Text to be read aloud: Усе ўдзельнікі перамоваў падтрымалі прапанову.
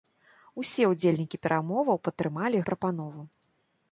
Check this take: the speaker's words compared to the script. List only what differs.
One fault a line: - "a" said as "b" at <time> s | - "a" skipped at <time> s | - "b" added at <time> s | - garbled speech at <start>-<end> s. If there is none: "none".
none